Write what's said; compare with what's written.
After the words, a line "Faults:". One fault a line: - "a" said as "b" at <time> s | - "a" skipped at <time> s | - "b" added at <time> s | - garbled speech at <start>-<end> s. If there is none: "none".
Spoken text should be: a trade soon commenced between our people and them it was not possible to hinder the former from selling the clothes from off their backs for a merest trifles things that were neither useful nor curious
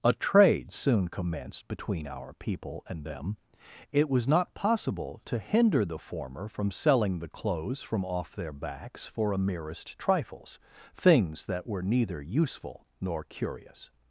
a trade soon commenced between our people and them it was not possible to hinder the former from selling the clothes from off their backs for a merest trifles things that were neither useful nor curious
Faults:
none